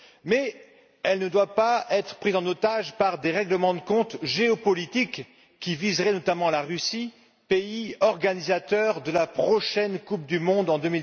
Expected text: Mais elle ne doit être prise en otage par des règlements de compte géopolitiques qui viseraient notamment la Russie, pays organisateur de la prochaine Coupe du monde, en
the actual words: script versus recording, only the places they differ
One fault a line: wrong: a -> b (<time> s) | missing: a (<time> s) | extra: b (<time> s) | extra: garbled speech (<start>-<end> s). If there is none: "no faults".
extra: pas (1.6 s)